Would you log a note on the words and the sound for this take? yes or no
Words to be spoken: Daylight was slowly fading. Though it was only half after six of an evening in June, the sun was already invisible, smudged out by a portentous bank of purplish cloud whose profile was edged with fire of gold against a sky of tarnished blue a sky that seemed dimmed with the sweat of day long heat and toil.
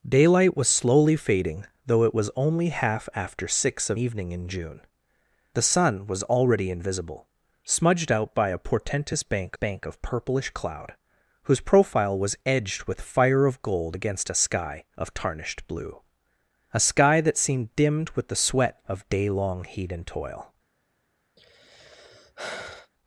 yes